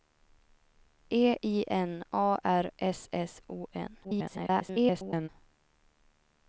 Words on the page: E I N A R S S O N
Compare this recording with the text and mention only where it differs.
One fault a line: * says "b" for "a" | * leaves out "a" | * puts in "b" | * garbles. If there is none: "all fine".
* garbles